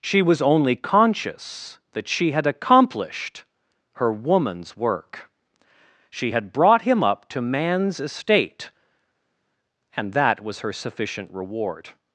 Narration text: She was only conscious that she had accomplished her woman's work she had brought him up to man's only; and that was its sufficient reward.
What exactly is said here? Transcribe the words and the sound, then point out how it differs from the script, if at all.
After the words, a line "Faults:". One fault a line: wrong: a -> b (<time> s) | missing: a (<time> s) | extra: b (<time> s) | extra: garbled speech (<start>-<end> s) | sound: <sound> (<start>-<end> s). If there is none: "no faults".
She was only conscious that she had accomplished her woman's work she had brought him up to man's estate; and that was her sufficient reward.
Faults:
wrong: only -> estate (8.0 s)
wrong: its -> her (10.6 s)